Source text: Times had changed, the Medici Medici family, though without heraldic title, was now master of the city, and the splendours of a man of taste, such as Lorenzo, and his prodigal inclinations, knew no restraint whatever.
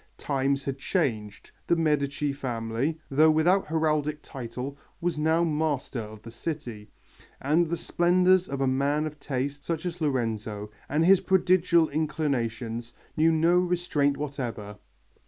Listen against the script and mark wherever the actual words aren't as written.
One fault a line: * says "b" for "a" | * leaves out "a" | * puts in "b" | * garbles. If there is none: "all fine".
* leaves out "Medici"